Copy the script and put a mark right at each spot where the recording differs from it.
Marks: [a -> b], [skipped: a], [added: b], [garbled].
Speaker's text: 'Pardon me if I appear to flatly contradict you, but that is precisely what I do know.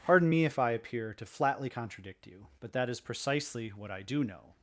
'Pardon me if I appear to flatly contradict you, but that is precisely what I do know.